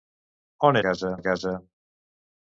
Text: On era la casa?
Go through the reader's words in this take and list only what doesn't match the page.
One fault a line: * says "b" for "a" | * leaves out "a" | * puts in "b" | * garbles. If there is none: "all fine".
* says "casa" for "era"